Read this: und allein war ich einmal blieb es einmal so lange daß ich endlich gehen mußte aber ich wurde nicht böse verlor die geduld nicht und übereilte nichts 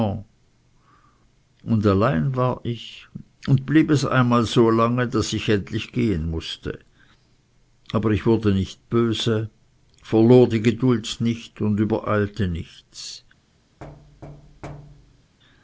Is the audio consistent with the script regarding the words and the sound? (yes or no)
no